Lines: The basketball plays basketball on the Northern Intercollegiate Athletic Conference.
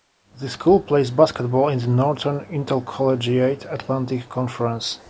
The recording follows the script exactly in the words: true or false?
false